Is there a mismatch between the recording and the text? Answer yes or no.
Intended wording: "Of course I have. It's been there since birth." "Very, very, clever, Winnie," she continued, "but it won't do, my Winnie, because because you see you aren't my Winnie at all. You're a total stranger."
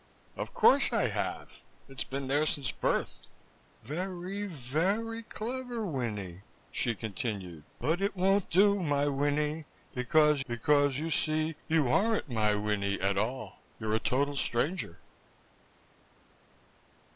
no